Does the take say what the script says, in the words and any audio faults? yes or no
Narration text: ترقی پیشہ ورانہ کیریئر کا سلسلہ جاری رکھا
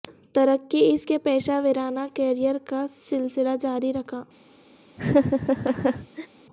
no